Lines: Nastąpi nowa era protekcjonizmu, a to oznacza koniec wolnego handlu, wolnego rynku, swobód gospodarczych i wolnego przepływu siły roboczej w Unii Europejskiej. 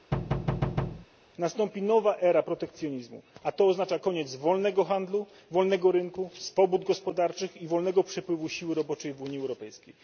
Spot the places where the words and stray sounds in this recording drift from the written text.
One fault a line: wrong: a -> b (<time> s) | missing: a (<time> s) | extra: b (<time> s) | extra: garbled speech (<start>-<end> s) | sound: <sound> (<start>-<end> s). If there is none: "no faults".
sound: thud (0.1-1.1 s)